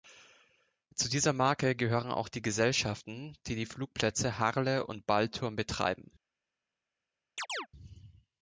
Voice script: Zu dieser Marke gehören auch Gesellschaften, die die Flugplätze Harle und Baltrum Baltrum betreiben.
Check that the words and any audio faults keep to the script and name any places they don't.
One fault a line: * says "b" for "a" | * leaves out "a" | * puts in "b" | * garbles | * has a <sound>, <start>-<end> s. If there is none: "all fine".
* puts in "die"
* leaves out "Baltrum"
* has a chirp, 7.4-7.7 s